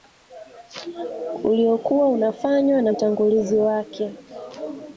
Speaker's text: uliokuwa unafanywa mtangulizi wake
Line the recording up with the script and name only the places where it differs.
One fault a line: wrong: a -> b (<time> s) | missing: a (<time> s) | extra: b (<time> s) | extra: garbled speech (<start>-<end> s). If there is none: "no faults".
extra: na (2.8 s)